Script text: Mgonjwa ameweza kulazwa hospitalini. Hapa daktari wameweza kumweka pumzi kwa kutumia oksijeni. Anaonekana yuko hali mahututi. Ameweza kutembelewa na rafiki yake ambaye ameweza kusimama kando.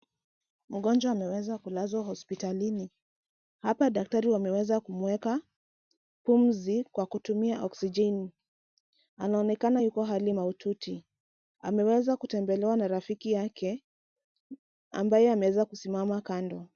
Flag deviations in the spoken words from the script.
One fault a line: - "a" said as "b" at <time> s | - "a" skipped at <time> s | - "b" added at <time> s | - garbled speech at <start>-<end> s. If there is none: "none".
none